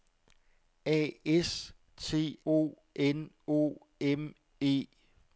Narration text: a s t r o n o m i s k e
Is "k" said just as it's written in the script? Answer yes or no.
no